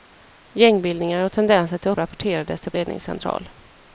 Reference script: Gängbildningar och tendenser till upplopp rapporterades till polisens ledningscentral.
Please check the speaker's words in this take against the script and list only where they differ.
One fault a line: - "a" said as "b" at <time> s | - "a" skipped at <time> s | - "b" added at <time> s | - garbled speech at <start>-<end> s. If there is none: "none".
- "upplopp" skipped at 1.9 s
- "polisens" skipped at 2.7 s